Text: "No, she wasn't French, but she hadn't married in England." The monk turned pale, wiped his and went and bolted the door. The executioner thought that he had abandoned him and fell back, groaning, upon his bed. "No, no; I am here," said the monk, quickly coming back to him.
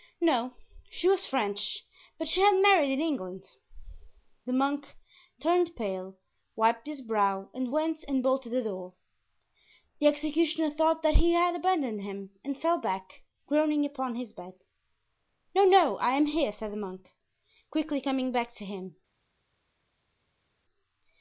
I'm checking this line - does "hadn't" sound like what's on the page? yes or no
no